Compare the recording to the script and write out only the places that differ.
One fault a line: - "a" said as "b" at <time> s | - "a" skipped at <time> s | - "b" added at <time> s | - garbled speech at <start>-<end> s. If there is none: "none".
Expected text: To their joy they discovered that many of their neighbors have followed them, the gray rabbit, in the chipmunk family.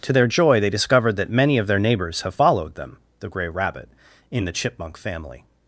none